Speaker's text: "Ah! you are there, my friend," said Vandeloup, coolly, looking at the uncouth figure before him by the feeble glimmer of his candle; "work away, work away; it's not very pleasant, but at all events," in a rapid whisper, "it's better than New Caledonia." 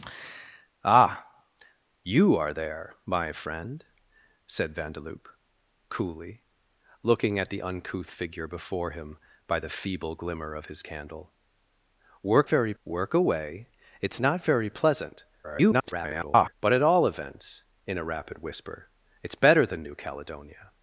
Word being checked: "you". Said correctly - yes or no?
yes